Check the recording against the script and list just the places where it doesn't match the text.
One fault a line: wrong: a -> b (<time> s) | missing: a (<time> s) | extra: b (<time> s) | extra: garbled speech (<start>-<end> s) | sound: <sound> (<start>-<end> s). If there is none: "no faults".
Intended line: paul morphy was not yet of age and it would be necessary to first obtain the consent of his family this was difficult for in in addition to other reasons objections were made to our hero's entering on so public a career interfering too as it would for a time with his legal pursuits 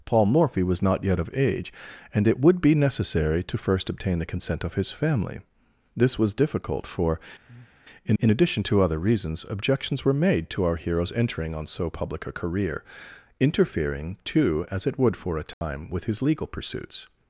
sound: breath (7.5-7.8 s)
sound: dropout (15.5-15.6 s)